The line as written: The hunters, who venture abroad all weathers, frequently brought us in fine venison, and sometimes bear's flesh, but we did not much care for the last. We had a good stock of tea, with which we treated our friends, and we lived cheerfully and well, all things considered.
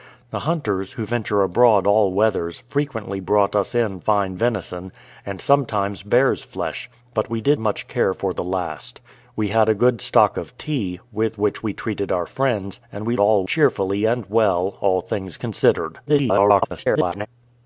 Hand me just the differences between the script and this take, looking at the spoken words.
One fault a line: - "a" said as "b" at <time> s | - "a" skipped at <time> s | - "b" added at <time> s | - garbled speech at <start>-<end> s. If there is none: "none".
- "not" skipped at 7.6 s
- "lived" said as "all" at 13.2 s
- garbled speech at 16.1-17.3 s